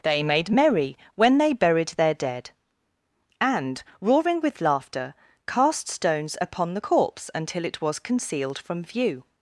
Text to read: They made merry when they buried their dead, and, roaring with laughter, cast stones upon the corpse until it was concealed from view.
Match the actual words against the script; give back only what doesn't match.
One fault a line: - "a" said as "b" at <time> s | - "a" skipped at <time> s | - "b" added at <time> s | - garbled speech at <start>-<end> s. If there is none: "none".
none